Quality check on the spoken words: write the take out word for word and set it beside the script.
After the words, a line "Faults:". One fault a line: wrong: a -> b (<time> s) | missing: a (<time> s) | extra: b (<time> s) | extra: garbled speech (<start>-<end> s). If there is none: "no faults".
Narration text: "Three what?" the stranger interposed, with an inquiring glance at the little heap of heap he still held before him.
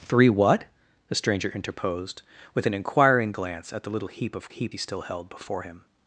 "Three what?" the stranger interposed, with an inquiring glance at the little heap of heap he still held before him.
Faults:
no faults